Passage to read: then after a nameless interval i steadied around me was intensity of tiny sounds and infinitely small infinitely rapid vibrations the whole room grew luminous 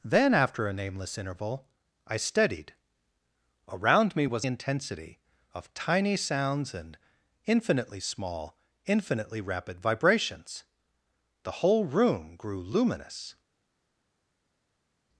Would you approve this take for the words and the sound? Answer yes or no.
yes